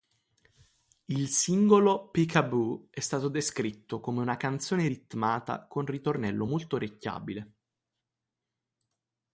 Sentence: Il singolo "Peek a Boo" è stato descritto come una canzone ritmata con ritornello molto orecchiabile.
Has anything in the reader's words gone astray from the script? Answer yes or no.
no